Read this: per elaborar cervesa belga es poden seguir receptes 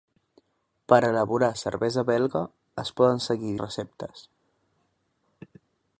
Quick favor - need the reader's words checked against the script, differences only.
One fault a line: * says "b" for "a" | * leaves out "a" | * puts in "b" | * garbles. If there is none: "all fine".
all fine